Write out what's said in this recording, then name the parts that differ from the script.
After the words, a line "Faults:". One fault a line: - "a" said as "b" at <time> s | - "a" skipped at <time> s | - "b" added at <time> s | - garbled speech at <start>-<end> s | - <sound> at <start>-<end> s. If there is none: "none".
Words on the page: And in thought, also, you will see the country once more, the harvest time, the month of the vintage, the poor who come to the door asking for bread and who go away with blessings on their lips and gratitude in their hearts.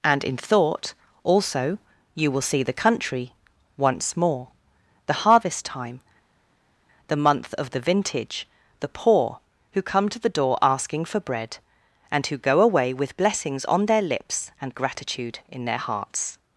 And in thought, also, you will see the country once more, the harvest time, the month of the vintage, the poor who come to the door asking for bread and who go away with blessings on their lips and gratitude in their hearts.
Faults:
none